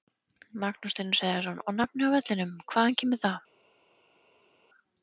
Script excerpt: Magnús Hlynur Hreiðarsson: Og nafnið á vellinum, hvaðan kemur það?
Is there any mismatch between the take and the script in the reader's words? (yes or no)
no